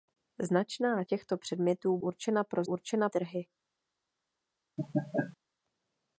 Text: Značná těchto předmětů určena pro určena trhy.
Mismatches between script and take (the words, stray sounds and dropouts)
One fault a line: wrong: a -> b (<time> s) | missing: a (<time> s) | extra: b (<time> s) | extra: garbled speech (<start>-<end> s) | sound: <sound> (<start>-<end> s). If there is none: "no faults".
sound: laugh (4.8-5.4 s)